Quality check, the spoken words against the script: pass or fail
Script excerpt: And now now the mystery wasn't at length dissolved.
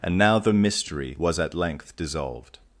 fail